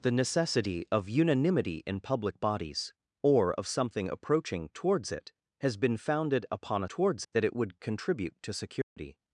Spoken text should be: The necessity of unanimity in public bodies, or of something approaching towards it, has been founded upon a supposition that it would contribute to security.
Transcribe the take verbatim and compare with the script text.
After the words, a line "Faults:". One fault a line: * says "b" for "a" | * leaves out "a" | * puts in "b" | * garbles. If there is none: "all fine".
The necessity of unanimity in public bodies, or of something approaching towards it, has been founded upon a towards that it would contribute to security.
Faults:
* says "towards" for "supposition"